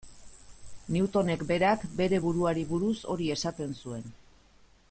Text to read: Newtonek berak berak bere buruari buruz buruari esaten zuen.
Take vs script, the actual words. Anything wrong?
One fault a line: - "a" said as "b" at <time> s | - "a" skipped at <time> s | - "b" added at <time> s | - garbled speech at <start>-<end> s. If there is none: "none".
- "berak" skipped at 1.9 s
- "buruari" said as "hori" at 3.2 s